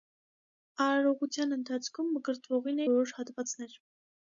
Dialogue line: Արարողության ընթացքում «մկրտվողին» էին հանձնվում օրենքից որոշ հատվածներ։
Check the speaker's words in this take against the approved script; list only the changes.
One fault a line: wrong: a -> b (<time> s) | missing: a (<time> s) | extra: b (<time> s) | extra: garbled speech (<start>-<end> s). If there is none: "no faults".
missing: էին հանձնվում օրենքից (2.8 s)